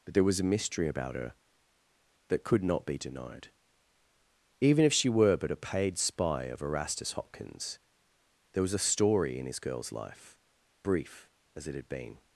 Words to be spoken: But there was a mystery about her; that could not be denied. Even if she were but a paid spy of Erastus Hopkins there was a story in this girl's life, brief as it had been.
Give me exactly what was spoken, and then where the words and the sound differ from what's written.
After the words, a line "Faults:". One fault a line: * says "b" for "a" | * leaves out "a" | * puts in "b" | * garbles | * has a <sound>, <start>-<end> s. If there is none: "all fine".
But there was a mystery about her; that could not be denied. Even if she were but a paid spy of Erastus Hopkins there was a story in his girl's life, brief as it had been.
Faults:
* says "his" for "this"